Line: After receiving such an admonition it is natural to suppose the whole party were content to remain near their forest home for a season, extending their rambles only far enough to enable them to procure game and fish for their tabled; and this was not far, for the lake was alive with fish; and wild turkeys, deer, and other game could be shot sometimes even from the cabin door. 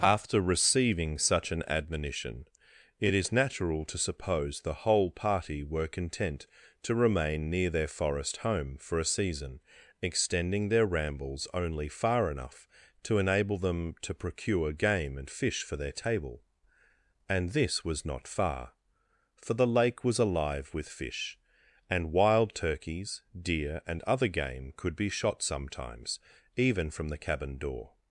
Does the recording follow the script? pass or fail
fail